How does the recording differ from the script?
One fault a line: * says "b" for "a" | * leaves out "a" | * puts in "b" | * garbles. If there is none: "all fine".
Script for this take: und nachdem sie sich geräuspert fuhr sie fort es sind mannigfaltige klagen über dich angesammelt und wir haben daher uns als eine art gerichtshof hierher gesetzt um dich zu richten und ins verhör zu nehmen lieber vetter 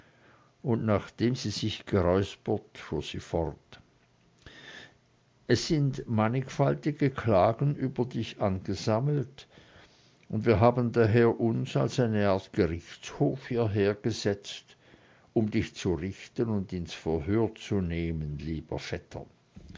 all fine